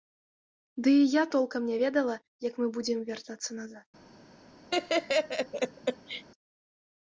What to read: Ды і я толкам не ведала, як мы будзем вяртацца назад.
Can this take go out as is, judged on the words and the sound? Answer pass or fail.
fail